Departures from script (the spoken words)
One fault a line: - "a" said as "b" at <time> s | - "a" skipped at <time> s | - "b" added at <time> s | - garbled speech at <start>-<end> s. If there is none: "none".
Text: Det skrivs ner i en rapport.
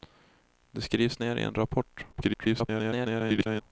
- garbled speech at 2.1-3.6 s